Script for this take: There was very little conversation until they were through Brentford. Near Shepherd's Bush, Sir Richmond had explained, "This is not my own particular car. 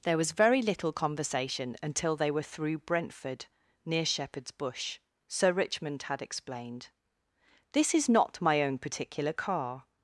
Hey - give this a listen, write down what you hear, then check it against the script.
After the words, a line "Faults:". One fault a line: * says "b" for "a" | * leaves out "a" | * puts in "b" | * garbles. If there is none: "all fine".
There was very little conversation until they were through Brentford. Near Shepherd's Bush, Sir Richmond had explained, "This is not my own particular car.
Faults:
all fine